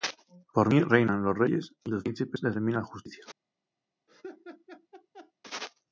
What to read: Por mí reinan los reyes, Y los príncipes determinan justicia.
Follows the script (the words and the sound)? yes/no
no